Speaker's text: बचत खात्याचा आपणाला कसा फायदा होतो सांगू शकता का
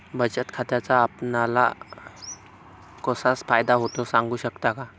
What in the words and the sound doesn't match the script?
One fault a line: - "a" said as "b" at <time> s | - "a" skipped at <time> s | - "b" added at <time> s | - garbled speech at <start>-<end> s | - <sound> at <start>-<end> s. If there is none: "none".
none